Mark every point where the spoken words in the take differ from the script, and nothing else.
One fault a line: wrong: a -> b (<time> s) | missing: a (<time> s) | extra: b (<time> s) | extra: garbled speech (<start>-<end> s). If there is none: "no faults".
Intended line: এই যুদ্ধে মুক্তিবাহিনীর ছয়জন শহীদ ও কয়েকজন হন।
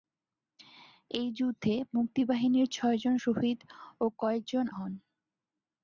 no faults